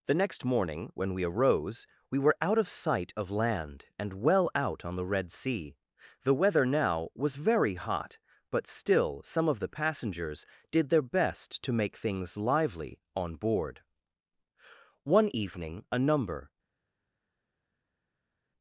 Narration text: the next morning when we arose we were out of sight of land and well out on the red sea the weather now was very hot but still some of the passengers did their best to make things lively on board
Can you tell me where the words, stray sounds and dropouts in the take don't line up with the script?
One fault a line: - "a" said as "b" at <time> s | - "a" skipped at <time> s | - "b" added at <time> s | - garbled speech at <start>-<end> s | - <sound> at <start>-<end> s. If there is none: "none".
- "one evening a number" added at 15.1 s